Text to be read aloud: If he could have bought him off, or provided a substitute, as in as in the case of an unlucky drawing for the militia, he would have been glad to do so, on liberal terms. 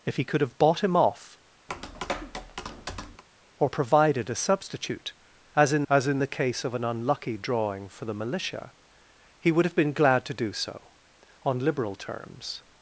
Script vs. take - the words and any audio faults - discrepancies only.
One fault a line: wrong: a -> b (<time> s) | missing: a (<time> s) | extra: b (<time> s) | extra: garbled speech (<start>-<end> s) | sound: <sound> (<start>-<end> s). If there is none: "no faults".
sound: tap (1.7-3.2 s)